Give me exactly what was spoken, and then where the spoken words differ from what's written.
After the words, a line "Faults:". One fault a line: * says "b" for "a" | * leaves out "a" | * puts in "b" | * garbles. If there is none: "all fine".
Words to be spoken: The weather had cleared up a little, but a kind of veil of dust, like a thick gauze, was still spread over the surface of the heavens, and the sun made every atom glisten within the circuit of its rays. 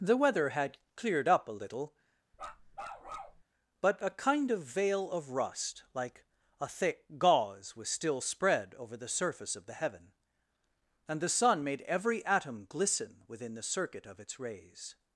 The weather had cleared up a little, but a kind of veil of rust, like a thick gauze, was still spread over the surface of the heaven, and the sun made every atom glisten within the circuit of its rays.
Faults:
* says "rust" for "dust"
* says "heaven" for "heavens"